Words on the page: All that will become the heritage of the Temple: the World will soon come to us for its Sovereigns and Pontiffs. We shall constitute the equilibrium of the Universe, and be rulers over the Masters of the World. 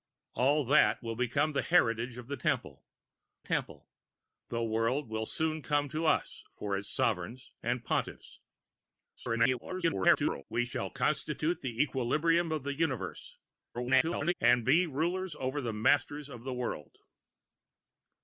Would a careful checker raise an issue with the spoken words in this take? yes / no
yes